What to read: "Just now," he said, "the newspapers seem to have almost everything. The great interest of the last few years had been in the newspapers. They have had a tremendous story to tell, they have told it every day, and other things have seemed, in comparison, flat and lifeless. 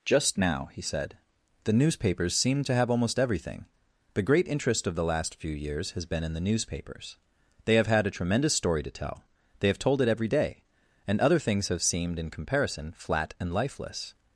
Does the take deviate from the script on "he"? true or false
false